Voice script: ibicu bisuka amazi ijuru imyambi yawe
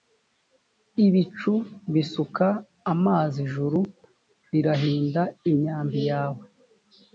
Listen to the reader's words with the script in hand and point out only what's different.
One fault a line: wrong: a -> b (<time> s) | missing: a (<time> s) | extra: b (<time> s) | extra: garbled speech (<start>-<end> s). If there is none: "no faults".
extra: rirahinda (4.5 s)